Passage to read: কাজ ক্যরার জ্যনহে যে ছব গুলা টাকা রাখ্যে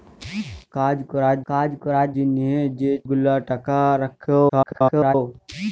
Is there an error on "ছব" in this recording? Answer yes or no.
yes